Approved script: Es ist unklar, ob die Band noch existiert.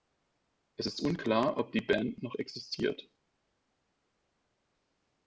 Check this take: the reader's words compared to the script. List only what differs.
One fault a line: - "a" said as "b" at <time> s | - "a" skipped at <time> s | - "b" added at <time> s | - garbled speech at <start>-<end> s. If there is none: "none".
none